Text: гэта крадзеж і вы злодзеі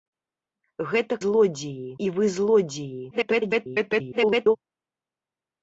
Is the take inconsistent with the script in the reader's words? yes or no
yes